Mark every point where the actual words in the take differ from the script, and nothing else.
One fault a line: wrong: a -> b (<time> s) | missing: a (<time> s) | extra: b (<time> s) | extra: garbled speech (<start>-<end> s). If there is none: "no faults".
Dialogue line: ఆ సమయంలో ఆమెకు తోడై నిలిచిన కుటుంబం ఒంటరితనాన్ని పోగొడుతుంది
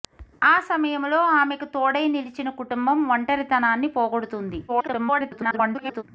extra: garbled speech (4.7-6.0 s)